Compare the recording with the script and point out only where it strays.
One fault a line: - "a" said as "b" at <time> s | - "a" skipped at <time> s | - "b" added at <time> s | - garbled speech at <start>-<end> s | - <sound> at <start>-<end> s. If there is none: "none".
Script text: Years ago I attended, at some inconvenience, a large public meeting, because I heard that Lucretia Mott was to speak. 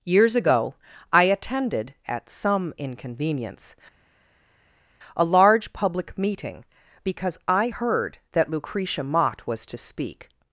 none